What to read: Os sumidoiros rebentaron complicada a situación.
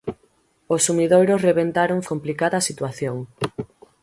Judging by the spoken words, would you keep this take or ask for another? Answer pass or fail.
pass